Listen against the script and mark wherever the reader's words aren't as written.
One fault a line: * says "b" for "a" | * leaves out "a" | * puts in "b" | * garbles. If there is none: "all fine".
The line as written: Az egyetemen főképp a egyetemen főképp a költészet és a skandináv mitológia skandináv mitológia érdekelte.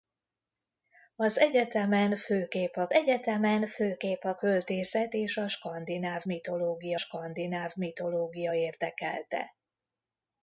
all fine